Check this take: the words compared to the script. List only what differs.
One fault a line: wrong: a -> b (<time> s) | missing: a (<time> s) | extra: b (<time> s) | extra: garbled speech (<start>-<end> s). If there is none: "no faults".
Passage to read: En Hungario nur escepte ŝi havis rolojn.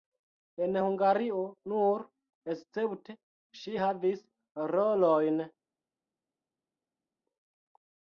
no faults